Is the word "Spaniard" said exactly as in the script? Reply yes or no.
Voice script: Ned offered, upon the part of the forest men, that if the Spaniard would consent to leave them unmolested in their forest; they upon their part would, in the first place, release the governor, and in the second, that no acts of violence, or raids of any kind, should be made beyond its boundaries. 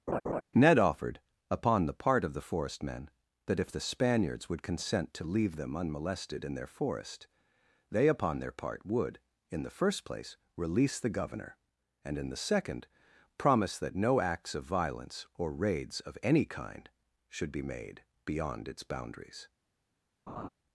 no